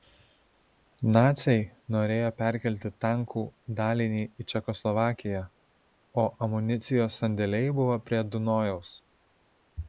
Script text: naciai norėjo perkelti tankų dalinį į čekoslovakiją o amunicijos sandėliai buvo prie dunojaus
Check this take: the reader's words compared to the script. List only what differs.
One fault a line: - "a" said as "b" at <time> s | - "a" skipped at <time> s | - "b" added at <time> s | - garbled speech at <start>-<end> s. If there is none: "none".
none